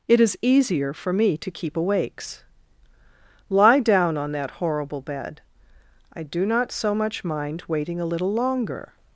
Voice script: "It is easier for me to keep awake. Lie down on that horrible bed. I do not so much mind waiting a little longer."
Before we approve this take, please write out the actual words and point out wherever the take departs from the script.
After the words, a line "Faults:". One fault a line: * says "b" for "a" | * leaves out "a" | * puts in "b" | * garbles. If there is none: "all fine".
"It is easier for me to keep awakes. Lie down on that horrible bed. I do not so much mind waiting a little longer."
Faults:
* says "awakes" for "awake"